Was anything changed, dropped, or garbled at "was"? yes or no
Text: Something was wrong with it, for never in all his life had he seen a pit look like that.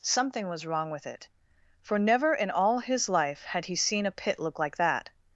no